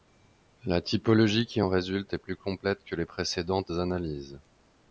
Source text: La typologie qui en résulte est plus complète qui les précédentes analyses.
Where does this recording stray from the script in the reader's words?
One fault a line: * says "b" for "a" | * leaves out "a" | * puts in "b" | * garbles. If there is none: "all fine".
* says "que" for "qui"